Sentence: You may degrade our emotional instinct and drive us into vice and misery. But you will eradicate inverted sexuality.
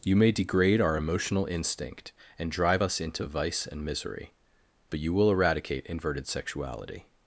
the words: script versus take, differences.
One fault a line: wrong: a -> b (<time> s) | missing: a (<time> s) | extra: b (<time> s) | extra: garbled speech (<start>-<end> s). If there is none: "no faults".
no faults